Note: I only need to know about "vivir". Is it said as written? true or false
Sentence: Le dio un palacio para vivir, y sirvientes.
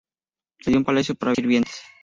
false